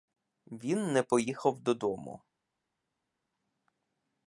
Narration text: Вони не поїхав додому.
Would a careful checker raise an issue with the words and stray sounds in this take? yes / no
yes